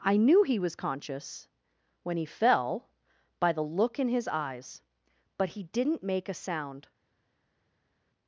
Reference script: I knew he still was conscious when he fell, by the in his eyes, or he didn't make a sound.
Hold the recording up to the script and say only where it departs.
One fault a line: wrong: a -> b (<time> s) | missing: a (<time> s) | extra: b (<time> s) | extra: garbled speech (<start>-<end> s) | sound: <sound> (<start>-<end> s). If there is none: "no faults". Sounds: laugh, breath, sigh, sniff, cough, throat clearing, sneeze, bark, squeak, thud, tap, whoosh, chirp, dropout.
missing: still (0.6 s)
extra: look (3.6 s)
wrong: or -> but (5.4 s)